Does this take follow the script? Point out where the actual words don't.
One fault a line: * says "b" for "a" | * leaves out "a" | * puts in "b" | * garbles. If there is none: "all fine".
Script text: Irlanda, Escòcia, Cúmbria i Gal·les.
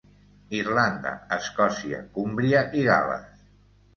all fine